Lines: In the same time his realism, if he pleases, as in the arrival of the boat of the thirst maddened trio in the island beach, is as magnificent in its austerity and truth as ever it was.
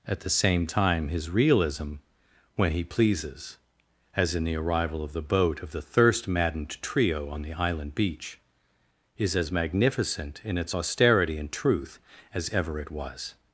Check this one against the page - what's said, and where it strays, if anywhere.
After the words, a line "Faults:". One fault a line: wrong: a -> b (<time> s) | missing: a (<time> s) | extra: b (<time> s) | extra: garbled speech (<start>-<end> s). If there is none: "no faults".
At the same time his realism, when he pleases, as in the arrival of the boat of the thirst maddened trio on the island beach, is as magnificent in its austerity and truth as ever it was.
Faults:
wrong: In -> At (0.1 s)
wrong: if -> when (2.5 s)
wrong: in -> on (7.3 s)